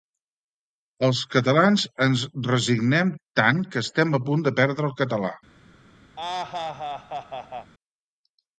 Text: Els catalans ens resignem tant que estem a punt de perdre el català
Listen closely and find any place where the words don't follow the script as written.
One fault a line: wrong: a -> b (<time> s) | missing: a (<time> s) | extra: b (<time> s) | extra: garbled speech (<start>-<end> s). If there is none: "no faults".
no faults